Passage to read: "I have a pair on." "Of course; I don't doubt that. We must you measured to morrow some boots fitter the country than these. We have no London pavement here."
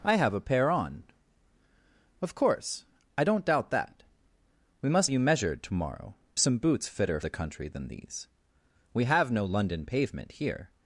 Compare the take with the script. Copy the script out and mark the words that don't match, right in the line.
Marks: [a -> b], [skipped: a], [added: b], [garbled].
"I have a pair on." "Of course; I don't doubt that. We must you measured to morrow some boots fitter the country than these. We have no London pavement here."